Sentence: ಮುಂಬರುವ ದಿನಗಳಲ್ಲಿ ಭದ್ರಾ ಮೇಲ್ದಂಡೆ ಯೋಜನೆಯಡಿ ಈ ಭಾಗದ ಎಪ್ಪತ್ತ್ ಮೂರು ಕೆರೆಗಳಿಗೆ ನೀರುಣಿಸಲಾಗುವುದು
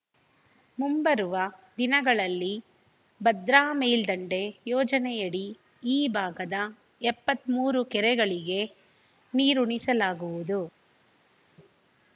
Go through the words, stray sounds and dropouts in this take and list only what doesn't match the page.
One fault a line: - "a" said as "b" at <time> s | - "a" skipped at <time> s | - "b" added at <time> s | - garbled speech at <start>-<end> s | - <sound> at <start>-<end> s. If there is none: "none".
none